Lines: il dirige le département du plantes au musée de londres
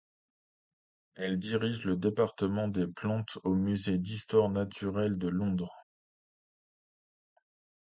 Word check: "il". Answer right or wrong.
wrong